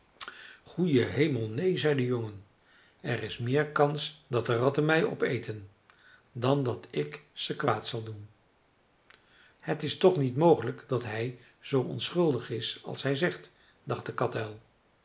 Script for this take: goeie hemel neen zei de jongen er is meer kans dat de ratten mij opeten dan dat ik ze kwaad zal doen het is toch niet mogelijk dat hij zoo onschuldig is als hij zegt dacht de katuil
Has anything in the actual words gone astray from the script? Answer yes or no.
no